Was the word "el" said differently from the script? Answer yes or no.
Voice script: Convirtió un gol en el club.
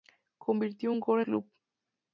yes